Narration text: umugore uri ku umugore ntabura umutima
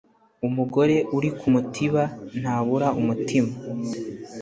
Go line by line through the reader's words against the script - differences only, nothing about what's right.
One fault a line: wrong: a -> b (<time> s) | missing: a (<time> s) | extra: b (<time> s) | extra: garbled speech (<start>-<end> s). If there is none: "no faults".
wrong: umugore -> mutiba (1.5 s)